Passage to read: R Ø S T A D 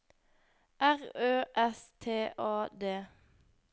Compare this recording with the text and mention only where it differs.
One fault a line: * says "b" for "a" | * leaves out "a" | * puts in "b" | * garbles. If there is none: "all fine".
all fine